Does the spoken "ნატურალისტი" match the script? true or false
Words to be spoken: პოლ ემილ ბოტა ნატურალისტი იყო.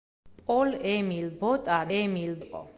false